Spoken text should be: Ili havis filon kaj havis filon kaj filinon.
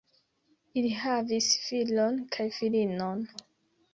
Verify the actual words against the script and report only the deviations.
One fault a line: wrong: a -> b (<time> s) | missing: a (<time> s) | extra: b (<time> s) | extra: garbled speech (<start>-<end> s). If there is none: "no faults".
missing: havis filon kaj (2.5 s)